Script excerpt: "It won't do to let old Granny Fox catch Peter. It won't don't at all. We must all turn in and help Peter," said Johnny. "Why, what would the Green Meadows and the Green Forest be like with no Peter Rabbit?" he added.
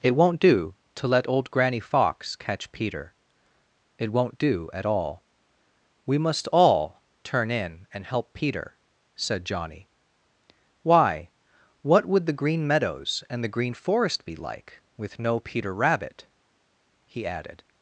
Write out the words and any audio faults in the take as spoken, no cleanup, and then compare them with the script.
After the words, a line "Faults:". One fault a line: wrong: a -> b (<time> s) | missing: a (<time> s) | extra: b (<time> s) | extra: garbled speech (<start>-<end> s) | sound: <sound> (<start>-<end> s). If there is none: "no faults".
"It won't do to let old Granny Fox catch Peter. It won't do at all. We must all turn in and help Peter," said Johnny. "Why, what would the Green Meadows and the Green Forest be like with no Peter Rabbit?" he added.
Faults:
wrong: don't -> do (4.4 s)